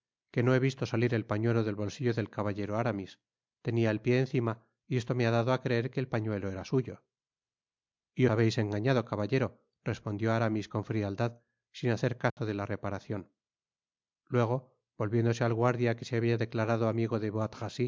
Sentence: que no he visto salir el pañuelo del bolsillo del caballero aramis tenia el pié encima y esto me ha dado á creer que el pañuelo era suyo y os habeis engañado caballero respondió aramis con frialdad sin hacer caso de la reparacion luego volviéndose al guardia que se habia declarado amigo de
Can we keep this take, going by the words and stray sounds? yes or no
no